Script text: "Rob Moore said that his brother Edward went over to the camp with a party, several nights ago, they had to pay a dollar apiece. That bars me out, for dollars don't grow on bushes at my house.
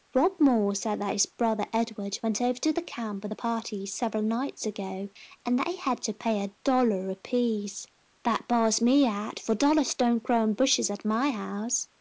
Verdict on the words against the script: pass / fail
fail